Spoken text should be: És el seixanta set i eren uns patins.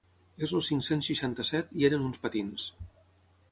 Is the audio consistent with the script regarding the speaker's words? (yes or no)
no